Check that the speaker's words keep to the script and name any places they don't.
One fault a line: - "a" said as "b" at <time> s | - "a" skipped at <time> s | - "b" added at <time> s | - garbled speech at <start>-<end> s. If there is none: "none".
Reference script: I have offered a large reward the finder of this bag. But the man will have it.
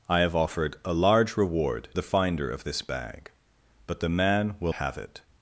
none